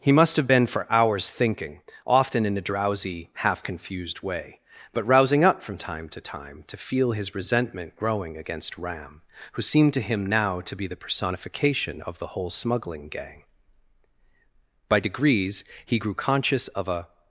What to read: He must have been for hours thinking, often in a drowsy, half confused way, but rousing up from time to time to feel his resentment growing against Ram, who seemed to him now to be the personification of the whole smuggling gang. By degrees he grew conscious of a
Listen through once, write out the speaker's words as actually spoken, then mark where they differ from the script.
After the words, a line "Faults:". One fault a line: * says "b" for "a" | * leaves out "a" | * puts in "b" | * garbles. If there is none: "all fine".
He must have been for hours thinking, often in a drowsy, half confused way, but rousing up from time to time to feel his resentment growing against Ram, who seemed to him now to be the personification of the whole smuggling gang. By degrees he grew conscious of a
Faults:
all fine